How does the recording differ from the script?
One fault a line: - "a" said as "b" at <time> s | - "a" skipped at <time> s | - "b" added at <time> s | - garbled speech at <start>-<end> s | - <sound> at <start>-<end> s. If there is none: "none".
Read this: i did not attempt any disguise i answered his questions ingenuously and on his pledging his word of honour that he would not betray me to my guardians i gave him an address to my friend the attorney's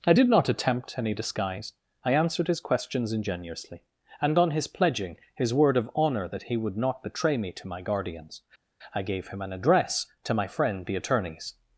none